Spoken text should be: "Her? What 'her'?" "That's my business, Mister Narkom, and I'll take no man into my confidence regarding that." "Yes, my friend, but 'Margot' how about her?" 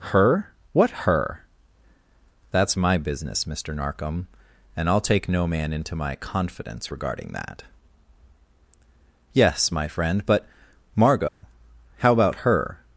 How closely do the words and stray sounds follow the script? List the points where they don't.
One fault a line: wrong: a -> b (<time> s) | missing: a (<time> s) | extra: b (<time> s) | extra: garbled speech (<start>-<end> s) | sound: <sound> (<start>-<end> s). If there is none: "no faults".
sound: dropout (11.3-11.4 s)